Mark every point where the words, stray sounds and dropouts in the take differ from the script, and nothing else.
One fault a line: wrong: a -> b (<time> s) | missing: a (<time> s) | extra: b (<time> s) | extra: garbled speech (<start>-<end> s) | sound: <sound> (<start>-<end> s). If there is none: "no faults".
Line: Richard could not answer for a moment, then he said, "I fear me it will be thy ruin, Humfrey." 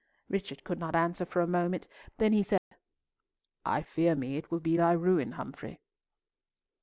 sound: dropout (2.6-2.7 s)